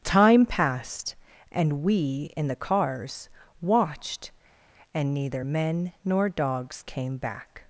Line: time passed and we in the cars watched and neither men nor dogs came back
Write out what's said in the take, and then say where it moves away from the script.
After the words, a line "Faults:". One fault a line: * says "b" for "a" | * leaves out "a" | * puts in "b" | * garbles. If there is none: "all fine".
time passed and we in the cars watched and neither men nor dogs came back
Faults:
all fine